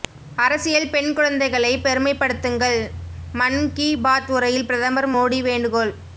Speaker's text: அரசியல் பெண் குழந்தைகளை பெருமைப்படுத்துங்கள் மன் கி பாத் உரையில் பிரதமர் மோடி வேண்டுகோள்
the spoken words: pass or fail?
pass